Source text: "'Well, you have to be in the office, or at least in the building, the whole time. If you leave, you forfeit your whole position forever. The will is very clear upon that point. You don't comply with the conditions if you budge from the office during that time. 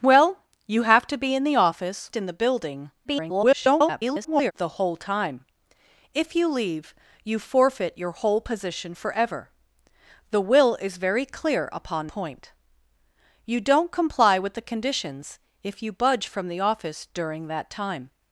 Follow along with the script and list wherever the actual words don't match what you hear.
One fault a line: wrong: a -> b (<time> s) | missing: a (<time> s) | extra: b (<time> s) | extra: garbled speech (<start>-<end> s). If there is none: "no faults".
missing: or at least (2.1 s)
extra: garbled speech (3.0-4.5 s)
missing: that (12.1 s)